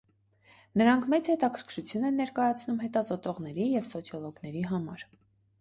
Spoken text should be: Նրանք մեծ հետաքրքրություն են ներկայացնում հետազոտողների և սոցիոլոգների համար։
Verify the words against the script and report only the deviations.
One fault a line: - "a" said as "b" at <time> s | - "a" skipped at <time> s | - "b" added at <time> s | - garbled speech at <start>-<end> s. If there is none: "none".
none